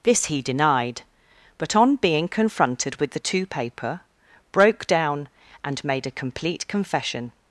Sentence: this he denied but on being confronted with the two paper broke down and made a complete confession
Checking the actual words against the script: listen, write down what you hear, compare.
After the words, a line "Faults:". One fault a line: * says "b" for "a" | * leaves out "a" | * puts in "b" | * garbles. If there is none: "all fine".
this he denied but on being confronted with the two paper broke down and made a complete confession
Faults:
all fine